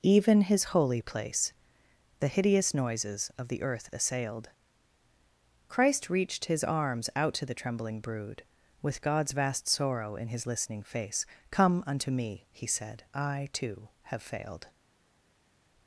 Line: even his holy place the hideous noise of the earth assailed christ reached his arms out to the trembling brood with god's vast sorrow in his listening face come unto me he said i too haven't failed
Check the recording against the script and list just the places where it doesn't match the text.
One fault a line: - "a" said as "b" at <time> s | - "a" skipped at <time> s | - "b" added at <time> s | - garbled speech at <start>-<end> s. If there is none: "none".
- "noise" said as "noises" at 2.7 s
- "haven't" said as "have" at 14.1 s